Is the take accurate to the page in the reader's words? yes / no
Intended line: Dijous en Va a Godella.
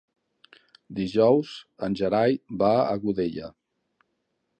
no